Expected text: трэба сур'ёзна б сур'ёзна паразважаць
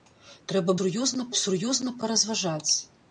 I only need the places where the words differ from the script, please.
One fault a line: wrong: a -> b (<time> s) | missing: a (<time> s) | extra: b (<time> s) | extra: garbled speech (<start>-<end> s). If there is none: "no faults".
no faults